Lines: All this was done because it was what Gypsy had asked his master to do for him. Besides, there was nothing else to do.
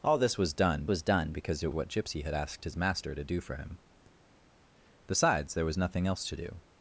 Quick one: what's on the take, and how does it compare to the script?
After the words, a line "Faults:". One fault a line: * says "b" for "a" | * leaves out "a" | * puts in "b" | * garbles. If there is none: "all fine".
All this was done was done because it what Gypsy had asked his master to do for him. Besides, there was nothing else to do.
Faults:
* puts in "was done"
* leaves out "was"